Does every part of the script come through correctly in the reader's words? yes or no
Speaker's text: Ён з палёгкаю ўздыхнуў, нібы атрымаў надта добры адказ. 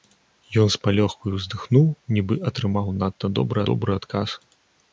no